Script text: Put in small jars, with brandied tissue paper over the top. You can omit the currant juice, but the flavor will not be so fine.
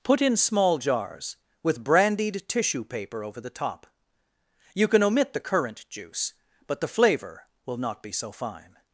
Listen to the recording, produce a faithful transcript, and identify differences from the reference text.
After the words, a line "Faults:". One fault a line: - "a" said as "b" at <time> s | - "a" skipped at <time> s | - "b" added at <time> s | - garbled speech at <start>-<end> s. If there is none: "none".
Put in small jars, with brandied tissue paper over the top. You can omit the currant juice, but the flavor will not be so fine.
Faults:
none